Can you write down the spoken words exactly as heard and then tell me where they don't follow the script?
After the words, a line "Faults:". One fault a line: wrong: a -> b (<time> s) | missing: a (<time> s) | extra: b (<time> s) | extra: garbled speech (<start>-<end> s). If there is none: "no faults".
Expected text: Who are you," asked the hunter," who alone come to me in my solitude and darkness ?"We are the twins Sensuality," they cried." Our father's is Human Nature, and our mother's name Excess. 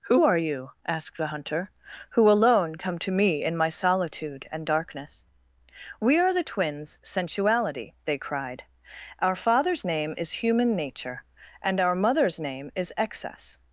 Who are you," asked the hunter," who alone come to me in my solitude and darkness ?"We are the twins Sensuality," they cried." Our father's name is Human Nature, and our mother's name is Excess.
Faults:
extra: name (9.8 s)
extra: is (12.8 s)